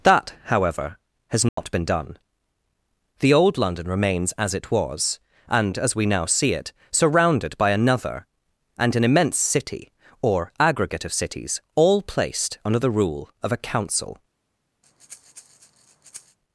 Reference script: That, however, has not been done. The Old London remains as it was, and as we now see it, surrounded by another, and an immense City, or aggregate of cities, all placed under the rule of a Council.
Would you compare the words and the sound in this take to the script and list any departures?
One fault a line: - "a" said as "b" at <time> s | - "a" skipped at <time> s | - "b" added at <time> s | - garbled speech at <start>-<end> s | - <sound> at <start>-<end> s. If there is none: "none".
- dropout at 1.5-1.6 s
- breath at 14.8-16.4 s